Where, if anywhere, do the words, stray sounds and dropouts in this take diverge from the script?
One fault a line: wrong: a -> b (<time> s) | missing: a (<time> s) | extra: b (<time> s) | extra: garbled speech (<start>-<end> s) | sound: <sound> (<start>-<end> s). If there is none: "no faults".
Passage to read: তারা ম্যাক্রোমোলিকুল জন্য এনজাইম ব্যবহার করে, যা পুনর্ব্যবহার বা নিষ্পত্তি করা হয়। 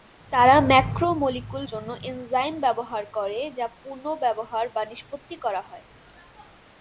no faults